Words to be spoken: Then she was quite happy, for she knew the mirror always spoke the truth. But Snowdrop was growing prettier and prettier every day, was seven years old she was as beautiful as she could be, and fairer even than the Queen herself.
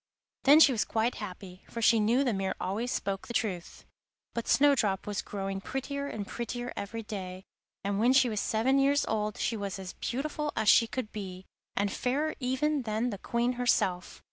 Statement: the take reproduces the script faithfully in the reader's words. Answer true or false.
false